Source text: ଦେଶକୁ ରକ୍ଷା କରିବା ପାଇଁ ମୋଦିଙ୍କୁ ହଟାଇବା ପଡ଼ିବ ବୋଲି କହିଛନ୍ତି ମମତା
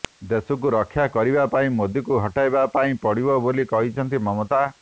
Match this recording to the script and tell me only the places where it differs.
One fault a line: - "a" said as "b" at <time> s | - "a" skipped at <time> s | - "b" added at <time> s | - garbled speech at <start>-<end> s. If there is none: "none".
- "ପାଇଁ" added at 2.7 s